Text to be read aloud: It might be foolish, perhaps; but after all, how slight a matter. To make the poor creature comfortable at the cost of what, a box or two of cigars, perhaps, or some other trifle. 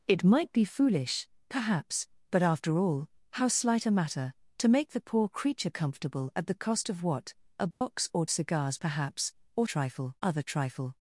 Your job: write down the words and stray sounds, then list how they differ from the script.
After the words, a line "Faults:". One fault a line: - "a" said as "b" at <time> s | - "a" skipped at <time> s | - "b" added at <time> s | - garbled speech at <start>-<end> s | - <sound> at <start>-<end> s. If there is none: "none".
It might be foolish, perhaps; but after all, how slight a matter. To make the poor creature comfortable at the cost of what, a box or cigars, perhaps, or trifle other trifle.
Faults:
- dropout at 7.7-7.8 s
- "two of" skipped at 8.2 s
- "some" said as "trifle" at 9.6 s